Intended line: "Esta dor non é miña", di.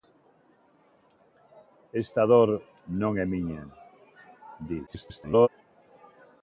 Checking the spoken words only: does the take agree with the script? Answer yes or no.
no